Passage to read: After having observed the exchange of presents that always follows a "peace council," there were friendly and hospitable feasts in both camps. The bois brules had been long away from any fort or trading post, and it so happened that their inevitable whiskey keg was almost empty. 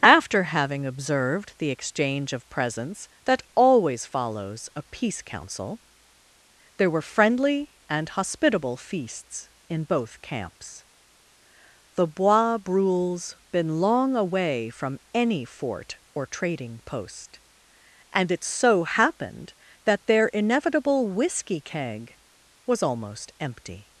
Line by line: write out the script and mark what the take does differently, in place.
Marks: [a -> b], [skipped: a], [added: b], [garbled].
After having observed the exchange of presents that always follows a "peace council," there were friendly and hospitable feasts in both camps. The bois brules [skipped: had] been long away from any fort or trading post, and it so happened that their inevitable whiskey keg was almost empty.